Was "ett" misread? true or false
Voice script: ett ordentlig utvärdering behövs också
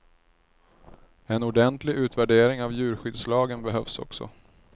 true